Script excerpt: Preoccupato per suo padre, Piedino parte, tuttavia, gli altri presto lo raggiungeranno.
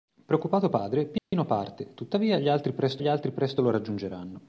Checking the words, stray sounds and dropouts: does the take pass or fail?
fail